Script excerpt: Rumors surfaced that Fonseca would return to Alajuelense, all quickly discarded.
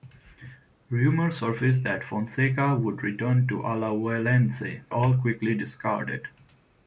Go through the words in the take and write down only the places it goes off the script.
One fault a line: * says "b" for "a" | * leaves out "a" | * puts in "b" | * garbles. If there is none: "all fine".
all fine